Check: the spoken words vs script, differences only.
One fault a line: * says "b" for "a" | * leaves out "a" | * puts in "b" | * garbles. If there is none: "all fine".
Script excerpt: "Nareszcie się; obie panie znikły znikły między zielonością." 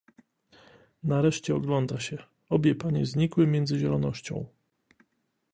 * puts in "ogląda"
* leaves out "znikły"